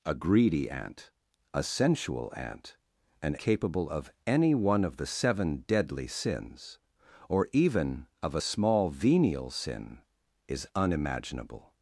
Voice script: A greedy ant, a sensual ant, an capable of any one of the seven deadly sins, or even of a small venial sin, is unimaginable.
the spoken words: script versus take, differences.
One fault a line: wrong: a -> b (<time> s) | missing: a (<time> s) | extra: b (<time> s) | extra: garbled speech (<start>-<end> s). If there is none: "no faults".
no faults